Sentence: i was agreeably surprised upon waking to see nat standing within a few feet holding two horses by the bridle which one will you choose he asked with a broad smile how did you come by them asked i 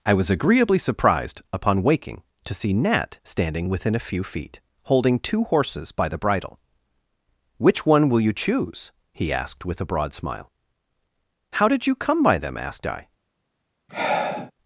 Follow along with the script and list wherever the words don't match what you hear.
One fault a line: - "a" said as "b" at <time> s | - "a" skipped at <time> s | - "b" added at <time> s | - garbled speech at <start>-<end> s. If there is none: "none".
none